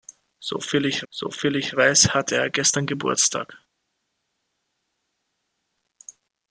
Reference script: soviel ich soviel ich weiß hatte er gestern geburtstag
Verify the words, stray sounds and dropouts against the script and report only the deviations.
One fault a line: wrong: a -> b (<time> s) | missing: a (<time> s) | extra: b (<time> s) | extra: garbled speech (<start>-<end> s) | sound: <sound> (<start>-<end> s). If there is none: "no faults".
no faults